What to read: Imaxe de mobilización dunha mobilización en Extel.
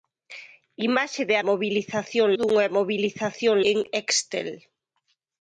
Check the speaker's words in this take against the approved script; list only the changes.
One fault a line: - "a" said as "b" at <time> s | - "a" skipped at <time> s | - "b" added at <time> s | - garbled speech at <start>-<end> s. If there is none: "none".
none